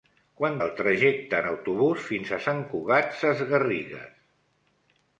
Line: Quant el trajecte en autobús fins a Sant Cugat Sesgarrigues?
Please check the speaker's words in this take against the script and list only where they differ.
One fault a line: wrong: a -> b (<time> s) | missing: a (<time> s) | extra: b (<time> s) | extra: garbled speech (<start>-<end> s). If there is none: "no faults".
no faults